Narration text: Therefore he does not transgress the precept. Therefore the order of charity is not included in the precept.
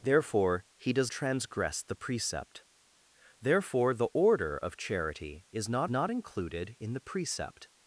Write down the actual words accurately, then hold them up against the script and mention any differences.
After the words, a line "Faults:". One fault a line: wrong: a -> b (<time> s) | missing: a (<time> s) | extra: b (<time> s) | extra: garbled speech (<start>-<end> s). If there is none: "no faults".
Therefore he does transgress the precept. Therefore the order of charity is not not included in the precept.
Faults:
missing: not (1.1 s)
extra: not (5.9 s)